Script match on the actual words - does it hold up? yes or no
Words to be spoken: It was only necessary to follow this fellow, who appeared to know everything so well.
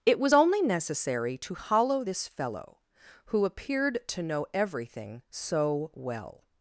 no